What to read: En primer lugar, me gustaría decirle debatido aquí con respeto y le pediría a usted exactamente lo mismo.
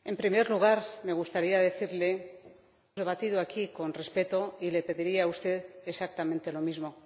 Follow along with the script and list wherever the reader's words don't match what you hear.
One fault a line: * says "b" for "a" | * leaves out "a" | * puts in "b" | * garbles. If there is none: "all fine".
all fine